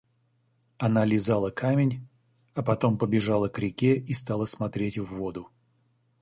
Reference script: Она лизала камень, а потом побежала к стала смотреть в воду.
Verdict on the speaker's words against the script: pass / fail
fail